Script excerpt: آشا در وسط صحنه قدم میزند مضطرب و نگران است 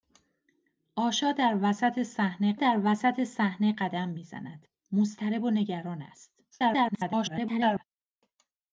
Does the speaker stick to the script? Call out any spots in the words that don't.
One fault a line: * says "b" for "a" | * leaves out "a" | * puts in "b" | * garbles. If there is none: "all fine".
* puts in "در وسط صحنه"
* garbles